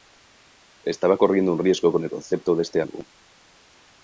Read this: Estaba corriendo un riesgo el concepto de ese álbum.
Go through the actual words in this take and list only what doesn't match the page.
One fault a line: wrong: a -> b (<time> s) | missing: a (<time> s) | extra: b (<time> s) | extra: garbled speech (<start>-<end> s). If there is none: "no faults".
extra: con (1.9 s)
wrong: ese -> este (2.6 s)